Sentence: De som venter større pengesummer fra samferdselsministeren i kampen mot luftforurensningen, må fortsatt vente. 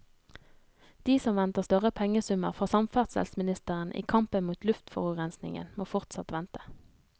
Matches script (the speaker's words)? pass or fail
pass